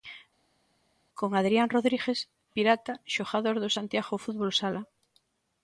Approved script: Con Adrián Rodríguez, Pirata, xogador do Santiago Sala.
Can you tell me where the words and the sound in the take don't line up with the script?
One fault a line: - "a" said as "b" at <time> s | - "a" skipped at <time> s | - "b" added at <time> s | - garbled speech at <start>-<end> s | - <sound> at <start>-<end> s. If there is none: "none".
- "Fútbol" added at 4.2 s